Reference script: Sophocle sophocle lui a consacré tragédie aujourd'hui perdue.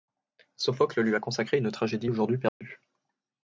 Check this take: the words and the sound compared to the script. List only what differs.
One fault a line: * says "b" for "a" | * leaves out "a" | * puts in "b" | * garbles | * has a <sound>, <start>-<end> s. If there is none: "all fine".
* leaves out "sophocle"
* puts in "une"
* has a dropout, 2.5-2.6 s